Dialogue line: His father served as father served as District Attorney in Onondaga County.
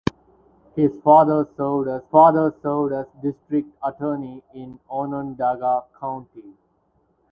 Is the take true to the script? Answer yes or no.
yes